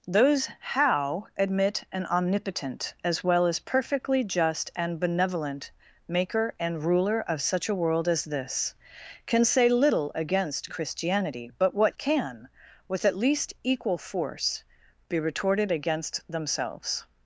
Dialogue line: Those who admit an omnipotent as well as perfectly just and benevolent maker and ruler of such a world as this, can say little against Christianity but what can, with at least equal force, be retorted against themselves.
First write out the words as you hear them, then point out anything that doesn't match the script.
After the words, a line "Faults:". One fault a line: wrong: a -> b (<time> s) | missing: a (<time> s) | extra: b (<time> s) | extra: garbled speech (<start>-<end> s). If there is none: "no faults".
Those how admit an omnipotent as well as perfectly just and benevolent maker and ruler of such a world as this, can say little against Christianity but what can, with at least equal force, be retorted against themselves.
Faults:
wrong: who -> how (0.6 s)